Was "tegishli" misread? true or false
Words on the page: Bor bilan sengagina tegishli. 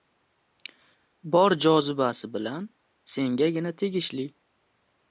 false